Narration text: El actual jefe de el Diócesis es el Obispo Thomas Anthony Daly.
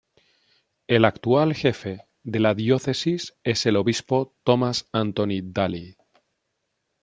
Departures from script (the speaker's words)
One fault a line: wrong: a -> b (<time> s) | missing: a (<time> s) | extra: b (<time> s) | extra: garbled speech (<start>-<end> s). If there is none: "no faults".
wrong: el -> la (2.4 s)